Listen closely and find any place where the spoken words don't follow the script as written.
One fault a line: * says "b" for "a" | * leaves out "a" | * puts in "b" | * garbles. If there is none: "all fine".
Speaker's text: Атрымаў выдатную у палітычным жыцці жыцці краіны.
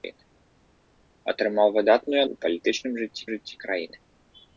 all fine